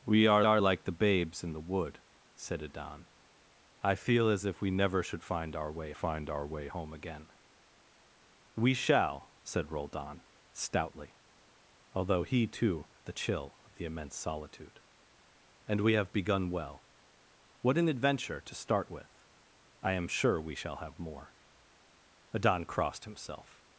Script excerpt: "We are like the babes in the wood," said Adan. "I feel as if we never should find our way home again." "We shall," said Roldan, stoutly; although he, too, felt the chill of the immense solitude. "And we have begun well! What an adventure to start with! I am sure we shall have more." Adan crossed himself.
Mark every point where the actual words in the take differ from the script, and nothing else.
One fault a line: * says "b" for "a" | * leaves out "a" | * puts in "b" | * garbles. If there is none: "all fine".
* puts in "are"
* puts in "find our way"
* leaves out "felt"